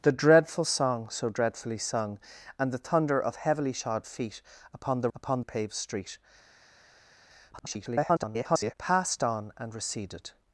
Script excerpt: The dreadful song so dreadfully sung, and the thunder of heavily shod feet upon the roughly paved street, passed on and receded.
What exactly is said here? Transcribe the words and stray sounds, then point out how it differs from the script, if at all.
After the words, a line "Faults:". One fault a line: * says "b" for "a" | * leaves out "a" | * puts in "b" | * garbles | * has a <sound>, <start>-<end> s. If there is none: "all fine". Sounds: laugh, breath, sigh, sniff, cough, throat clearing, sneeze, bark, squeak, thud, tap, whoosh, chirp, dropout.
The dreadful song so dreadfully sung, and the thunder of heavily shod feet upon the upon paved street, [garbled] passed on and receded.
Faults:
* says "upon" for "roughly"
* garbles